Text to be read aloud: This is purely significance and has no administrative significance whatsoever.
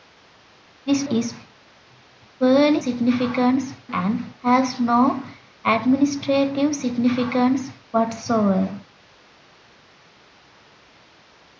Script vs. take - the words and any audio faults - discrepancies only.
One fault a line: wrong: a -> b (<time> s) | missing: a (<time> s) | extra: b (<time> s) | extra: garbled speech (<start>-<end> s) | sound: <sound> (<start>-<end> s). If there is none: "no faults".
no faults